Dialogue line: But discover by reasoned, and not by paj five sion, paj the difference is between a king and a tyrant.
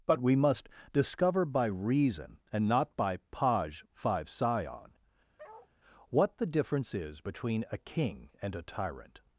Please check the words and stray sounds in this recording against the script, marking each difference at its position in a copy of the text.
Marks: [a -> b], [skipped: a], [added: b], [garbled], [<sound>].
But [added: we must] discover by [reasoned, -> reason] and not by paj five sion, [bark] [paj -> what] the difference is between a king and a tyrant.